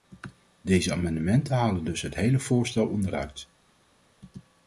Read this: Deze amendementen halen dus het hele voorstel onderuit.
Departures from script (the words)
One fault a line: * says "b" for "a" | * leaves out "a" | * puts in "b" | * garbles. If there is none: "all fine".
all fine